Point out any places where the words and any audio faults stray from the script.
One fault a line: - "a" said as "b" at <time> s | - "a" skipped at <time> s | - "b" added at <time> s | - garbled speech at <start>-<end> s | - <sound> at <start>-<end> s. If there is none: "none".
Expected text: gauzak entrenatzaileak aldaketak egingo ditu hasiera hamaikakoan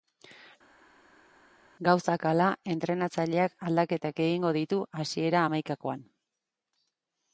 - "hala" added at 2.3 s